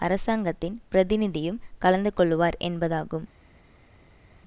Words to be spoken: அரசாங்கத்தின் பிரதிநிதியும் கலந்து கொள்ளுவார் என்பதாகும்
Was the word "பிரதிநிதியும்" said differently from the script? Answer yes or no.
no